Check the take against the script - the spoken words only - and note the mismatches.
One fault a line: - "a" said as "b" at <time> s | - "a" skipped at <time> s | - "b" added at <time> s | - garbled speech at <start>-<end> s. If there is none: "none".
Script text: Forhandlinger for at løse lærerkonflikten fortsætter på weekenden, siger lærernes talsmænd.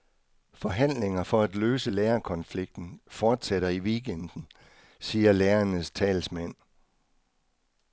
- "på" said as "i" at 3.7 s